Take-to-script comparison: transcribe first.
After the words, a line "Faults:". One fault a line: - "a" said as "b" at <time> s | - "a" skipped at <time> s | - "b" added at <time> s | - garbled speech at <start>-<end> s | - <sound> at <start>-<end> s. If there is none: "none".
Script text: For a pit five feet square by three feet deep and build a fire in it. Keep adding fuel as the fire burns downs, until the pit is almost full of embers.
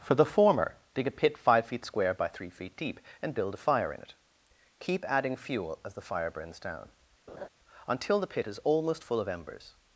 For the former, dig a pit five feet square by three feet deep and build a fire in it. Keep adding fuel as the fire burns down, until the pit is almost full of embers.
Faults:
- "the former dig" added at 0.1 s
- "downs" said as "down" at 6.6 s
- laugh at 7.3-7.5 s